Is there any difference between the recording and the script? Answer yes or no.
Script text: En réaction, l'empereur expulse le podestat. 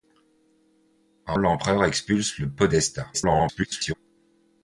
yes